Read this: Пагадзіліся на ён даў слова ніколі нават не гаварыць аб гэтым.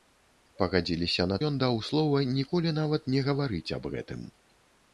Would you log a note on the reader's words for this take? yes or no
no